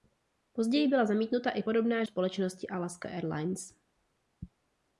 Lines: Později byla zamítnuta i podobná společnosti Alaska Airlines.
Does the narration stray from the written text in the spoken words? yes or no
no